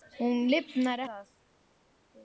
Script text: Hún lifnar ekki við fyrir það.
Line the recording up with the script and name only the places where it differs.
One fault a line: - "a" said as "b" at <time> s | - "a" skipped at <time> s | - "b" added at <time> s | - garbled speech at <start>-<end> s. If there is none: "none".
- "ekki við fyrir" skipped at 1.0 s